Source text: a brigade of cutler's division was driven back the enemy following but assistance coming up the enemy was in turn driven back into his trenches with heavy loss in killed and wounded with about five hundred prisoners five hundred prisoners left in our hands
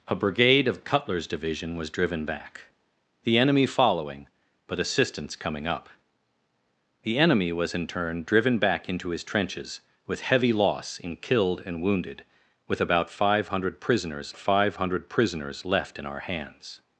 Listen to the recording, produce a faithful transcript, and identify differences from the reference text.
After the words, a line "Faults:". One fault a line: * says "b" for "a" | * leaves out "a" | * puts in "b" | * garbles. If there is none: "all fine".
a brigade of cutler's division was driven back the enemy following but assistance coming up the enemy was in turn driven back into his trenches with heavy loss in killed and wounded with about five hundred prisoners five hundred prisoners left in our hands
Faults:
all fine